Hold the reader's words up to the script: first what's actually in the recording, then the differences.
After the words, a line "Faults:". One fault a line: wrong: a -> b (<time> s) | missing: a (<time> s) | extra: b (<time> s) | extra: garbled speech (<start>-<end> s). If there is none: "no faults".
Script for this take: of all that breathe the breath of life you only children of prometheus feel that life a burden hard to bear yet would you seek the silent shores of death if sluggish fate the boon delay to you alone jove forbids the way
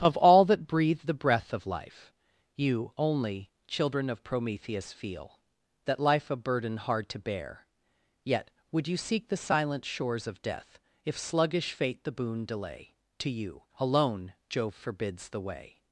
of all that breathe the breath of life you only children of prometheus feel that life a burden hard to bear yet would you seek the silent shores of death if sluggish fate the boon delay to you alone jove forbids the way
Faults:
no faults